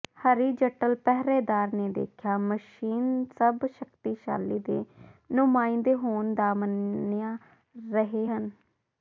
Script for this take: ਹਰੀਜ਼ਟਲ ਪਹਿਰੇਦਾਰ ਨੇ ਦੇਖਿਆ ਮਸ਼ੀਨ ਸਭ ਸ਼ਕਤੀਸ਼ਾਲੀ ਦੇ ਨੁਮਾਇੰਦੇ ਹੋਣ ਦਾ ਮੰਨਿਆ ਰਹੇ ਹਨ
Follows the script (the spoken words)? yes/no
yes